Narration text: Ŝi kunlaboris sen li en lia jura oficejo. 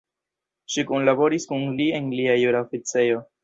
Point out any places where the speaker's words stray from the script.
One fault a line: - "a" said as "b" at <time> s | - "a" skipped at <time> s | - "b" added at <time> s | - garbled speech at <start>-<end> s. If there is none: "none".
- "sen" said as "kun" at 1.5 s